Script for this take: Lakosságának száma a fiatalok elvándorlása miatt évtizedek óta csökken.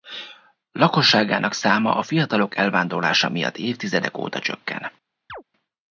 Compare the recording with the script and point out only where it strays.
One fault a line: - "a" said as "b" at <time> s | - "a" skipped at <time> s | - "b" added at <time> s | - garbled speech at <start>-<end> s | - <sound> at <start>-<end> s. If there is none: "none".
- chirp at 5.3-5.4 s